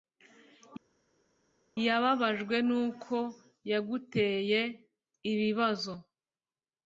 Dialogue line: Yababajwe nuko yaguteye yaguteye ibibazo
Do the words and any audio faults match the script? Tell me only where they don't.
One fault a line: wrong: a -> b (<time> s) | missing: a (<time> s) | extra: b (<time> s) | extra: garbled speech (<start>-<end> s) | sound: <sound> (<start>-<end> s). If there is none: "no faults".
missing: yaguteye (4.6 s)